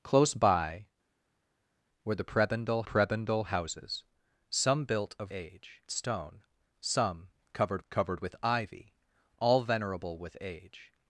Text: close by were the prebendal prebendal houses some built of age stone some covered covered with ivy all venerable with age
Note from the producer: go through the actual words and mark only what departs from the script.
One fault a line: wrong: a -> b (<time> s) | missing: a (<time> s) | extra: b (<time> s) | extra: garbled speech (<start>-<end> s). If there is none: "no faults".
no faults